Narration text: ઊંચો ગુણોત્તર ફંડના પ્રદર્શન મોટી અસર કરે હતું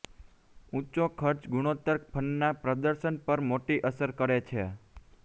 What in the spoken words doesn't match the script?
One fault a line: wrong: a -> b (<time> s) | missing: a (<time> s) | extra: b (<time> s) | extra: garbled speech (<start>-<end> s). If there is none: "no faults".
extra: ખર્ચ (1.1 s)
extra: પર (3.3 s)
wrong: હતું -> છે (4.5 s)